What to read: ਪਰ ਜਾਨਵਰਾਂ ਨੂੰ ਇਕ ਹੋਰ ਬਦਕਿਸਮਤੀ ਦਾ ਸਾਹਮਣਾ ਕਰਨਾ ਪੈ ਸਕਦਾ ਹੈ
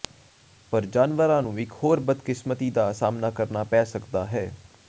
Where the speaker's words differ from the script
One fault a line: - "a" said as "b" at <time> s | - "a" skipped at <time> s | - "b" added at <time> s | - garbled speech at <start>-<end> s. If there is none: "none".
none